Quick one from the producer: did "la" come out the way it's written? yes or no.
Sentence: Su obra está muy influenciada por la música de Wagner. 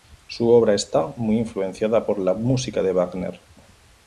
yes